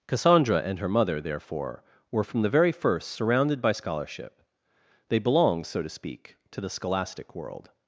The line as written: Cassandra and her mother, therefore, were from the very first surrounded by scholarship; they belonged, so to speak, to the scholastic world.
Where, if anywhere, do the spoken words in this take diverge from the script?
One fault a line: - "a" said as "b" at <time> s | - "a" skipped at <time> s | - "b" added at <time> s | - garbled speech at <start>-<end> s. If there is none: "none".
none